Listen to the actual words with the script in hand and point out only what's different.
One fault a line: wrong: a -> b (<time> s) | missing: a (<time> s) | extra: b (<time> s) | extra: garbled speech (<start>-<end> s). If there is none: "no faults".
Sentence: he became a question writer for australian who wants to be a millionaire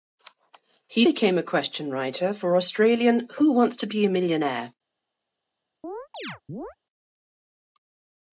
no faults